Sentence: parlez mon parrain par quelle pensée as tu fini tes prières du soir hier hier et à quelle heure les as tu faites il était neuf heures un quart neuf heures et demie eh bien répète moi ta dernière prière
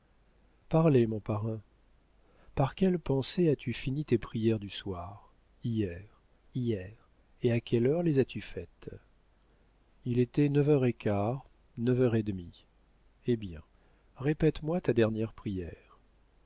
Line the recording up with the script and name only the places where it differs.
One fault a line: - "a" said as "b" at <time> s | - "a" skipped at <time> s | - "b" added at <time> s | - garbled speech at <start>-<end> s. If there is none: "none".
none